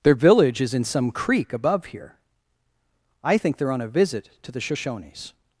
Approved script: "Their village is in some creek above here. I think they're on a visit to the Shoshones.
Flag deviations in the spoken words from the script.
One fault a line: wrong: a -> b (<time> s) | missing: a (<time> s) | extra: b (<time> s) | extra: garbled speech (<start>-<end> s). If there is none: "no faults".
no faults